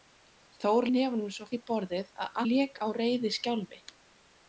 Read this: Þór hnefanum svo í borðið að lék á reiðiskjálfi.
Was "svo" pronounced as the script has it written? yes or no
yes